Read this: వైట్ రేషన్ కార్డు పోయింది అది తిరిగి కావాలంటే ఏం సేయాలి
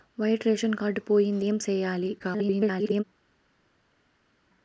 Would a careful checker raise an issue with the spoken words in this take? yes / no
yes